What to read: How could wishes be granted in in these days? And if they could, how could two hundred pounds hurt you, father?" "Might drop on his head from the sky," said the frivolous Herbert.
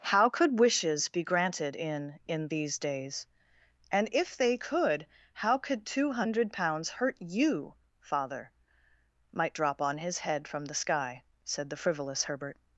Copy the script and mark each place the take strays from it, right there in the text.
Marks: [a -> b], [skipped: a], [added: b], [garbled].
How could wishes be granted in in these days? And if they could, how could two hundred pounds hurt you, father?" "Might drop on his head from the sky," said the frivolous Herbert.